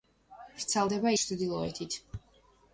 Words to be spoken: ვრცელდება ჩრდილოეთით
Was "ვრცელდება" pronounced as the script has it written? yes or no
yes